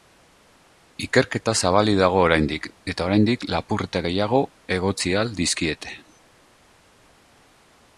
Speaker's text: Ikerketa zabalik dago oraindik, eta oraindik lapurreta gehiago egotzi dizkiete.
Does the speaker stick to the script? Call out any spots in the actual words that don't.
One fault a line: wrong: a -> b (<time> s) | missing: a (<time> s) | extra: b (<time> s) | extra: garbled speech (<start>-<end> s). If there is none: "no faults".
extra: ahal (5.2 s)